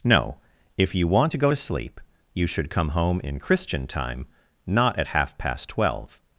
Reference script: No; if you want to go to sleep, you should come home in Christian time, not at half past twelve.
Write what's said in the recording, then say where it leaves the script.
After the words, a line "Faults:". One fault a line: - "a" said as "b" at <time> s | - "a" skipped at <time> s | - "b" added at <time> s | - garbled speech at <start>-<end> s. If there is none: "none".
No; if you want to go to sleep, you should come home in Christian time, not at half past twelve.
Faults:
none